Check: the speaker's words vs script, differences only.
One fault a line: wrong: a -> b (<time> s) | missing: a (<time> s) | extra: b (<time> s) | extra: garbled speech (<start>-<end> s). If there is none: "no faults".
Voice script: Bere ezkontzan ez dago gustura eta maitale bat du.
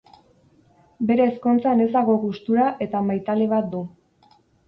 no faults